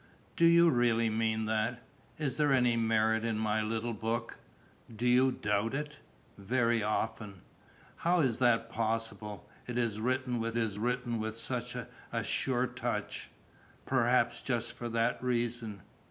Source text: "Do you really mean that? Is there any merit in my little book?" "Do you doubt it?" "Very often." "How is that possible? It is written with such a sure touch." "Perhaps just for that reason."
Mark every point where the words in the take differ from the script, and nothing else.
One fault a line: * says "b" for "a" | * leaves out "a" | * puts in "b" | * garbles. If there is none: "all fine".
* puts in "is written with"